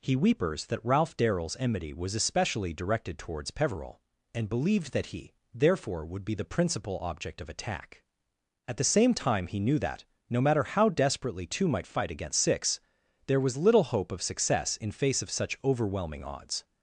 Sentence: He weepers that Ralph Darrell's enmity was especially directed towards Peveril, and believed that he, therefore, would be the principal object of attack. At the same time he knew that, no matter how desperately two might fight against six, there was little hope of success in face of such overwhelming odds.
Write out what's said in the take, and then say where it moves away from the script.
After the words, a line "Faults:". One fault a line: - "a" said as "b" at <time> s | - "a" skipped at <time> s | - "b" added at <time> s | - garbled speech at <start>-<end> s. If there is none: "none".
He weepers that Ralph Darrell's enmity was especially directed towards Peveril, and believed that he, therefore, would be the principal object of attack. At the same time he knew that, no matter how desperately two might fight against six, there was little hope of success in face of such overwhelming odds.
Faults:
none